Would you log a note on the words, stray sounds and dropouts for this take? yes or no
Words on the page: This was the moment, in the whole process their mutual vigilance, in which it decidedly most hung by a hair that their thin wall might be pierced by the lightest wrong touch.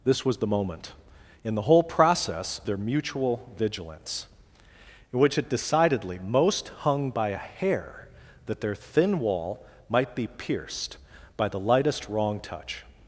no